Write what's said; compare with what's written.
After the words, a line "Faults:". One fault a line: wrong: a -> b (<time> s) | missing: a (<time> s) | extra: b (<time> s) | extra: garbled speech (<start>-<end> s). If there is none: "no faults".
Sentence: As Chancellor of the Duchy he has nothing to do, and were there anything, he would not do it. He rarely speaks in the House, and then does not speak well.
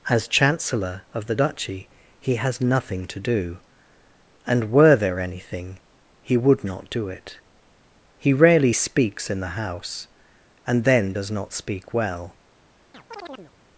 As Chancellor of the Duchy he has nothing to do, and were there anything, he would not do it. He rarely speaks in the House, and then does not speak well.
Faults:
no faults